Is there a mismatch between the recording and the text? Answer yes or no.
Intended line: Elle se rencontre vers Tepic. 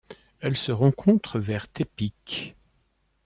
no